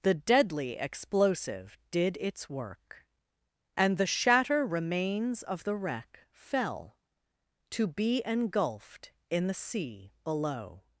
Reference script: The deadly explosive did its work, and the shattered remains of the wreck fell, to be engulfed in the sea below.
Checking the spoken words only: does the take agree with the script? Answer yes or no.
no